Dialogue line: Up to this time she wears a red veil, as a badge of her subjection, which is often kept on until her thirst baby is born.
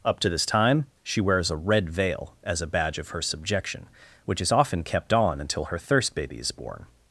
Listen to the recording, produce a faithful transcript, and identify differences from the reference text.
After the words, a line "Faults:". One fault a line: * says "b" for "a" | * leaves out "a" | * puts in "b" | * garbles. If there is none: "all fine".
Up to this time she wears a red veil, as a badge of her subjection, which is often kept on until her thirst baby is born.
Faults:
all fine